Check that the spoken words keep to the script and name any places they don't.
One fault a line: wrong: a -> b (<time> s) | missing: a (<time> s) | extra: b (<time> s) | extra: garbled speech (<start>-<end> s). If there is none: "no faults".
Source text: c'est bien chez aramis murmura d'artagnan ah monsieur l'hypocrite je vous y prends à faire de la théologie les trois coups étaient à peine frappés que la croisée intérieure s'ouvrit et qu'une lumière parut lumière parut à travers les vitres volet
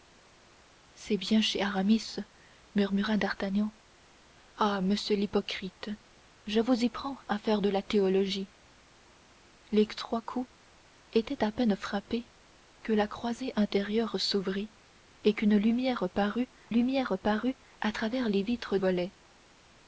no faults